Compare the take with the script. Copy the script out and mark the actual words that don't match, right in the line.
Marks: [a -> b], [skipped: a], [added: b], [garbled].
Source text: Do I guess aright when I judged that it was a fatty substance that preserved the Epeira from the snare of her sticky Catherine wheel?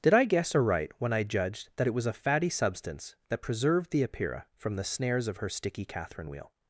[Do -> Did] I guess aright when I judged that it was a fatty substance that preserved the Epeira from the [snare -> snares] of her sticky Catherine wheel?